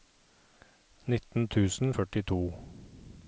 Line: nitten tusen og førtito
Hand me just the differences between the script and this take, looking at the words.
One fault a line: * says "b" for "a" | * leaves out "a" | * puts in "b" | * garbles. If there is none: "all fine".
all fine